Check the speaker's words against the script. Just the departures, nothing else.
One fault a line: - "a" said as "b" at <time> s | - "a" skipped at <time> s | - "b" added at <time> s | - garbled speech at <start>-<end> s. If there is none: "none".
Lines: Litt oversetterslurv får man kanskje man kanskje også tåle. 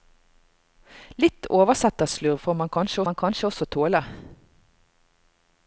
none